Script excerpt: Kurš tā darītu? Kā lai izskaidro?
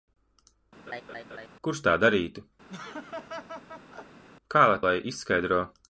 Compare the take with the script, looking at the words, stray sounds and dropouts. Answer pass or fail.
fail